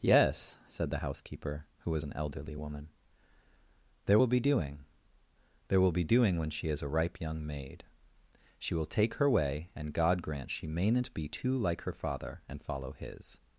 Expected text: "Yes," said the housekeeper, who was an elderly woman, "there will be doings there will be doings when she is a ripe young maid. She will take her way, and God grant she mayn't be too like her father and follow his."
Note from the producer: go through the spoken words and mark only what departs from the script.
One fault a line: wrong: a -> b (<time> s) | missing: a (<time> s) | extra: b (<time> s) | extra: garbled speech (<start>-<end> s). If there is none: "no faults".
wrong: doings -> doing (4.4 s)
wrong: doings -> doing (6.0 s)